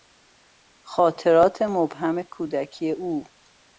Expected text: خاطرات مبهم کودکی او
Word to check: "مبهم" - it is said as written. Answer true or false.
true